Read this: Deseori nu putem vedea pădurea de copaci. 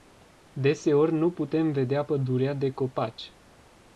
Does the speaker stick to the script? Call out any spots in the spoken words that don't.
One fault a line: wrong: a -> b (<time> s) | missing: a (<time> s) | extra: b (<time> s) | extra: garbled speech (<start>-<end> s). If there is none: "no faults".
no faults